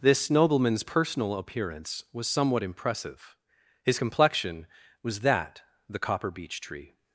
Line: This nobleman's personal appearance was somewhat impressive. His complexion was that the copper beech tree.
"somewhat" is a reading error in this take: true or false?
false